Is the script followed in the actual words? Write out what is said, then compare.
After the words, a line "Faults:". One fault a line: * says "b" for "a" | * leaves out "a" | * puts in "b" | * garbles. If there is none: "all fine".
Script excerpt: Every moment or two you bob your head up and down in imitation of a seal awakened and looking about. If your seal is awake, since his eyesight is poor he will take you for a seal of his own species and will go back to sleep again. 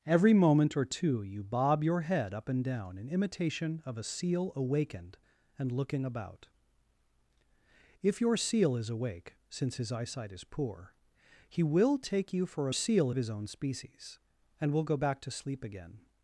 Every moment or two you bob your head up and down in imitation of a seal awakened and looking about. If your seal is awake, since his eyesight is poor he will take you for a seal of his own species and will go back to sleep again.
Faults:
all fine